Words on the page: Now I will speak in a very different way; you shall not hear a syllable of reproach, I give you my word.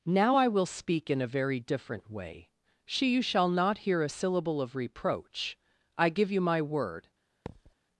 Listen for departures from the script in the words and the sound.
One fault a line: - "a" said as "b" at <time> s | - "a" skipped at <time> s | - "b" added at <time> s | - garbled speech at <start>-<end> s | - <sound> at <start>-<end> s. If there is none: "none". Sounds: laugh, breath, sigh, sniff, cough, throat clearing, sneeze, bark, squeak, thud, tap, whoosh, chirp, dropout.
- "she" added at 2.9 s
- thud at 7.5-7.7 s